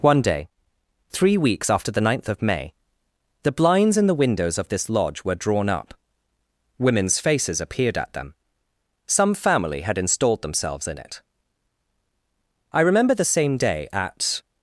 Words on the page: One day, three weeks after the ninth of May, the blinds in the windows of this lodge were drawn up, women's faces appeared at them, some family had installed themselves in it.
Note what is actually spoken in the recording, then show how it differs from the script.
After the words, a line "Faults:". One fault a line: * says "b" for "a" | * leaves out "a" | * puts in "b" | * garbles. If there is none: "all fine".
One day, three weeks after the ninth of May, the blinds in the windows of this lodge were drawn up, women's faces appeared at them, some family had installed themselves in it. I remember the same day at
Faults:
* puts in "I remember the same day at"